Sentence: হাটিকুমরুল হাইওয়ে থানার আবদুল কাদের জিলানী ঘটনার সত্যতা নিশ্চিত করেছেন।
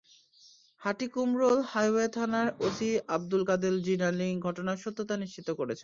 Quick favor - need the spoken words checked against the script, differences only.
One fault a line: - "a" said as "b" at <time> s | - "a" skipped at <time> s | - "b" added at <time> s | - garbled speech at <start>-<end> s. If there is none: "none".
- "ওসি" added at 2.7 s